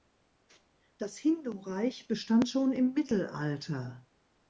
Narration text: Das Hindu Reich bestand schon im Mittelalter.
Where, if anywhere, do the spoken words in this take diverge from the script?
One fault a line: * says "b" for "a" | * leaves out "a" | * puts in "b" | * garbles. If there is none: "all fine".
all fine